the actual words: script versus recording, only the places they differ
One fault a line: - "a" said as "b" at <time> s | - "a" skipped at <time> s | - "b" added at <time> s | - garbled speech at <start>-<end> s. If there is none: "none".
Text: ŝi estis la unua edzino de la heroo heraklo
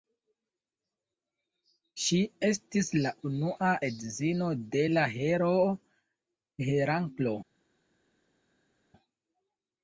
none